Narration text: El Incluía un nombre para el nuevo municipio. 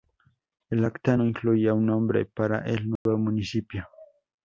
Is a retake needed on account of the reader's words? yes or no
yes